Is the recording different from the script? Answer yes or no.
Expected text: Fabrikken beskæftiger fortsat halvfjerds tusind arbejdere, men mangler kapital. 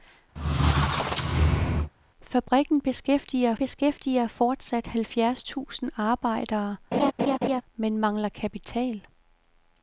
yes